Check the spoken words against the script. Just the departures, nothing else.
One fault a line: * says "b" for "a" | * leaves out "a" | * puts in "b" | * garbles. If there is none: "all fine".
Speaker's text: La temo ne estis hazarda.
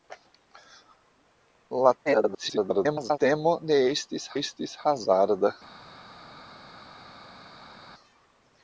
* garbles
* puts in "estis"